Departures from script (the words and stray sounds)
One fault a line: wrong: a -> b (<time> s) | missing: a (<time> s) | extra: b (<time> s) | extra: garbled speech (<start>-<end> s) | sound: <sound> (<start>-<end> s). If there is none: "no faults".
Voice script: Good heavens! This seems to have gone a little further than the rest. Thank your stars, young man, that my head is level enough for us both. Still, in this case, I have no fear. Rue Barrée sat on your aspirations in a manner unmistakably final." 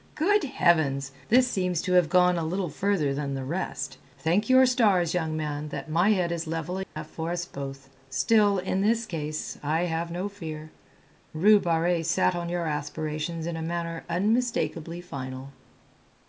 sound: dropout (6.8-7.0 s)